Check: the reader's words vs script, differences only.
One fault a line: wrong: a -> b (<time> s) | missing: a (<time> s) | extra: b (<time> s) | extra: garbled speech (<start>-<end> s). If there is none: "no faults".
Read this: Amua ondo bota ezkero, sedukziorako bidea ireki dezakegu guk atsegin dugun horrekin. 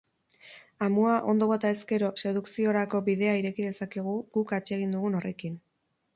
no faults